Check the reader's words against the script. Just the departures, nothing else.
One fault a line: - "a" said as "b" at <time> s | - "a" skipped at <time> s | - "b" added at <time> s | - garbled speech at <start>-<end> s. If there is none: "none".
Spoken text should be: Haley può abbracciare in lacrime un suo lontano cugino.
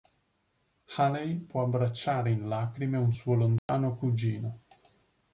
none